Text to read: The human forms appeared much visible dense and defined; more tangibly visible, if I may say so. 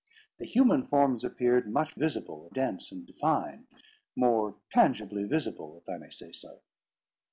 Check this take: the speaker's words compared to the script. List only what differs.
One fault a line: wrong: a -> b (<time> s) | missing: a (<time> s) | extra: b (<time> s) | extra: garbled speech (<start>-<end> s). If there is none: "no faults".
no faults